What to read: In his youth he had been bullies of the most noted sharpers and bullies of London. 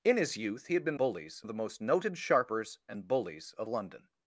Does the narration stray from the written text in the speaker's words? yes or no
no